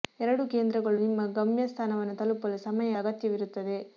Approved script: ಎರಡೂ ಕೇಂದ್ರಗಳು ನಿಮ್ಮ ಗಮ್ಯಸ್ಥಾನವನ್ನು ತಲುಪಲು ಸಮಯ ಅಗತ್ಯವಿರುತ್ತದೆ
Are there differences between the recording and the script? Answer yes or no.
no